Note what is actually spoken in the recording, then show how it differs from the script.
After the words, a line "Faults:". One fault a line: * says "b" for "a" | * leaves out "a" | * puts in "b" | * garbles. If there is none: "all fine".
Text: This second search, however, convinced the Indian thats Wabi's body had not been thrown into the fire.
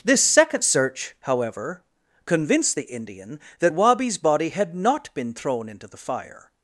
This second search, however, convinced the Indian that Wabi's body had not been thrown into the fire.
Faults:
* says "that" for "thats"